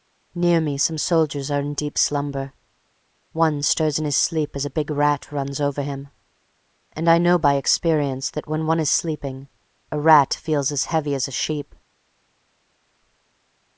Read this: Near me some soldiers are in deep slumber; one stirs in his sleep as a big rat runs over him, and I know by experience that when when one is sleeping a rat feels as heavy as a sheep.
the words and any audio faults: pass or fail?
fail